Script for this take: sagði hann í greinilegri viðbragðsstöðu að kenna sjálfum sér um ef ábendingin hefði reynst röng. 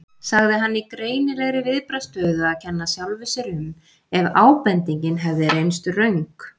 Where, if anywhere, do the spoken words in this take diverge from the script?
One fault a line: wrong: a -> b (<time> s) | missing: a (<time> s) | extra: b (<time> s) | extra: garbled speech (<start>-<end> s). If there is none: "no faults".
no faults